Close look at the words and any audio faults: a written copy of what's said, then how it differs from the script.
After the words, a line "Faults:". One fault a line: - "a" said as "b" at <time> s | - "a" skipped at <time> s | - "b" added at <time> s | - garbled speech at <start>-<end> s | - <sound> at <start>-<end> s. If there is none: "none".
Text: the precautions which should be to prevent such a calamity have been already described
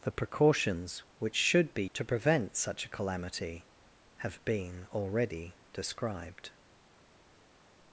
the precautions which should be to prevent such a calamity have been already described
Faults:
none